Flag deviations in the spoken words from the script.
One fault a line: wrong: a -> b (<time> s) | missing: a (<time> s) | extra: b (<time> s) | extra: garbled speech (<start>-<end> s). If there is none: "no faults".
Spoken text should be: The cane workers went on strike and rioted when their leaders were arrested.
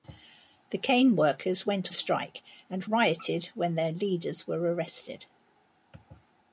missing: on (1.9 s)